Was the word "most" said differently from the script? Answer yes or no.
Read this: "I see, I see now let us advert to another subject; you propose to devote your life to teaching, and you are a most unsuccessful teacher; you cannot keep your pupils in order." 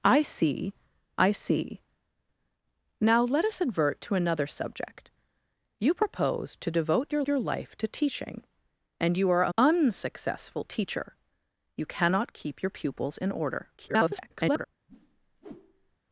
yes